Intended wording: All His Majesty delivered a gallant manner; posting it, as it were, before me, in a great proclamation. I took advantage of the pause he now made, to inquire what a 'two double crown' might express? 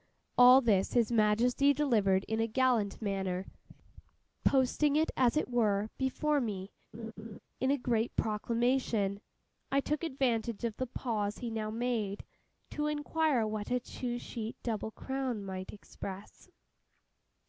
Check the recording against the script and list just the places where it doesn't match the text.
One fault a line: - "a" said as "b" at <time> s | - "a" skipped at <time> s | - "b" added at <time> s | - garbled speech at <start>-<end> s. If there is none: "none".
- "this" added at 0.6 s
- "in" added at 2.2 s
- "sheet" added at 14.2 s